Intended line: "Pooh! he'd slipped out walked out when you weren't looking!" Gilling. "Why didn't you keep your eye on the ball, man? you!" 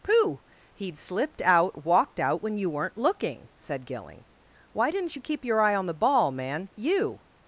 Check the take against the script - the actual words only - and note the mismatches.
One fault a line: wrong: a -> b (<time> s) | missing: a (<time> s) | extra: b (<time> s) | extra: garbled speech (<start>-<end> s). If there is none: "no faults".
extra: said (3.5 s)